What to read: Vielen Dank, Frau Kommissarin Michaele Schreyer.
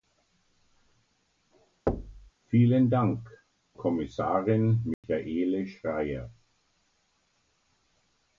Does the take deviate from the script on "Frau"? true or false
true